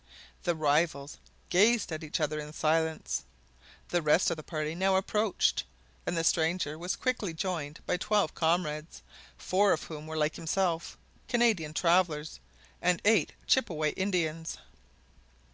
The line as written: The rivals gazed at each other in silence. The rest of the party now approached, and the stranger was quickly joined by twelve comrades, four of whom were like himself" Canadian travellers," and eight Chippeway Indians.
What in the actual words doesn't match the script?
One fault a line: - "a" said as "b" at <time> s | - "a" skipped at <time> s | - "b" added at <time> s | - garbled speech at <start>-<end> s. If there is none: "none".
none